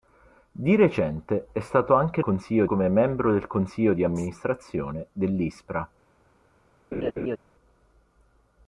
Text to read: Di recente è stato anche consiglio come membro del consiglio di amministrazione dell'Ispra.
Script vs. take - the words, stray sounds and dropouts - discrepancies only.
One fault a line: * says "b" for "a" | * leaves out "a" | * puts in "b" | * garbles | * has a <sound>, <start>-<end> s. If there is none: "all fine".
* has a laugh, 6.9-7.4 s